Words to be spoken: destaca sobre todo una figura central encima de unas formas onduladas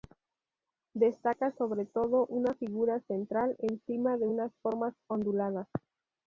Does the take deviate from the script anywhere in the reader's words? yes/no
no